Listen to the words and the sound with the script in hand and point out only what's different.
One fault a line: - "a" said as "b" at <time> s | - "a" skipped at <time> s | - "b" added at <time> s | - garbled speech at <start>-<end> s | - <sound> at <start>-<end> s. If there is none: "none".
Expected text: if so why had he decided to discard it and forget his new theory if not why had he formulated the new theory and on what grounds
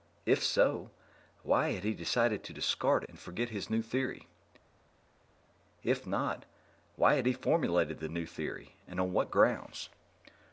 - "it" skipped at 3.0 s